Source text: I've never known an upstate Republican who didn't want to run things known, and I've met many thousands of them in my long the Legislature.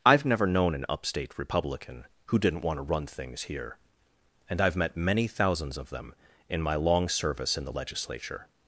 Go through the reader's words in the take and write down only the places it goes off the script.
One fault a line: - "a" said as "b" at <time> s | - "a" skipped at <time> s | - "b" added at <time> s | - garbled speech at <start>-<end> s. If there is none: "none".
- "known" said as "here" at 3.4 s
- "service in" added at 7.1 s